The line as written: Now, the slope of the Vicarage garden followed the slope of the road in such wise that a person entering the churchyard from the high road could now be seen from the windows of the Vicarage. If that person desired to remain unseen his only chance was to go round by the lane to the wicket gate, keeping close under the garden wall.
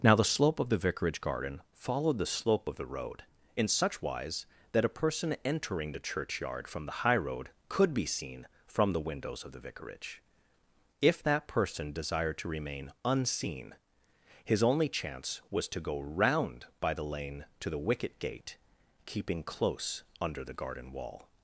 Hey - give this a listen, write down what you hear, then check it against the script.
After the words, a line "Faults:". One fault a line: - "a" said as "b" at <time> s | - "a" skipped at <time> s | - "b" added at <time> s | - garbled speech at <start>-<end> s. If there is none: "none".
Now, the slope of the Vicarage garden followed the slope of the road in such wise that a person entering the churchyard from the high road could be seen from the windows of the Vicarage. If that person desired to remain unseen his only chance was to go round by the lane to the wicket gate, keeping close under the garden wall.
Faults:
- "now" skipped at 7.9 s